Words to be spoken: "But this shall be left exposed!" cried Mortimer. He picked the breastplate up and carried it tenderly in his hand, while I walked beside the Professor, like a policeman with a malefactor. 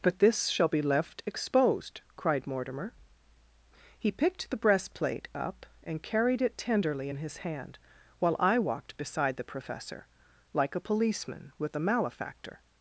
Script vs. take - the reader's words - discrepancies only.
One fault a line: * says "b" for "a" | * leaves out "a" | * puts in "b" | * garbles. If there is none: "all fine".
all fine